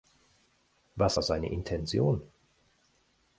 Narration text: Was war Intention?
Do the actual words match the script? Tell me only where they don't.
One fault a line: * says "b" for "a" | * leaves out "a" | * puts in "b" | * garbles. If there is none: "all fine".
* puts in "seine"